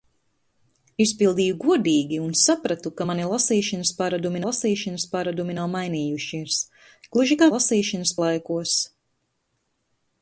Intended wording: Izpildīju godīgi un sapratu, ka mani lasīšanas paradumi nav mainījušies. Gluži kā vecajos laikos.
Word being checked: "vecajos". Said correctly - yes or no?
no